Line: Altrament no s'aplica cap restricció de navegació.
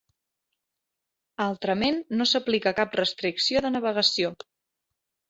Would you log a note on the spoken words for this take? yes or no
no